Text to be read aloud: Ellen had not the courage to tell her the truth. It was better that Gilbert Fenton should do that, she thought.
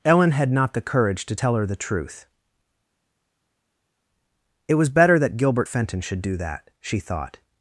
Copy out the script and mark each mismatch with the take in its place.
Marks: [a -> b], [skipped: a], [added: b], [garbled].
Ellen had not the courage to tell her the truth. It was better that Gilbert Fenton should do that, she thought.